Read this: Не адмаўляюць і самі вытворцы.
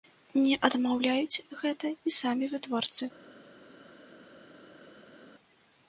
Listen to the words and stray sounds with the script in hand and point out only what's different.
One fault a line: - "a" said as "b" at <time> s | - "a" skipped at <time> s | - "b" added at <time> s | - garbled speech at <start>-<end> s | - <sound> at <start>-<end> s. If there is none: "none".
- "гэта" added at 1.6 s